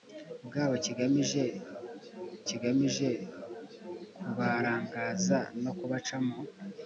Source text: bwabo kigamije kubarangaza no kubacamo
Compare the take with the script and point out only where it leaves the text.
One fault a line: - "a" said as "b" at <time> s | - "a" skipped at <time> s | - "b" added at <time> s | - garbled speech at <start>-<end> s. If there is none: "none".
- "kigamije" added at 2.5 s